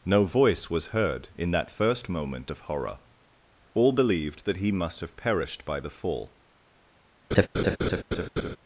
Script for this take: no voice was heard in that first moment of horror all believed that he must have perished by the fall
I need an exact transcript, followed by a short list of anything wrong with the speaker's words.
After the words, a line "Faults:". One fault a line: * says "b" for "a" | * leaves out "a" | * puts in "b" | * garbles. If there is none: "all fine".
no voice was heard in that first moment of horror all believed that he must have perished by the fall
Faults:
all fine